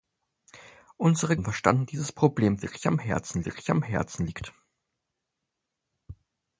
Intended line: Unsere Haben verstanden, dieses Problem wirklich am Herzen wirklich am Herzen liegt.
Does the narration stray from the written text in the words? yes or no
no